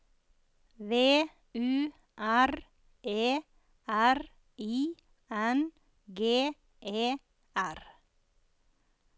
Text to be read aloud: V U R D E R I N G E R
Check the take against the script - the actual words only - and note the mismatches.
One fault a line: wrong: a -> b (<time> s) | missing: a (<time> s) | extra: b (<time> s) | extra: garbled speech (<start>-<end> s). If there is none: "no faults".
missing: D (2.5 s)